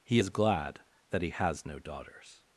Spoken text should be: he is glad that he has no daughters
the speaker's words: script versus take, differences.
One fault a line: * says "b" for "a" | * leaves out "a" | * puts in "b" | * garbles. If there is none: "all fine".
all fine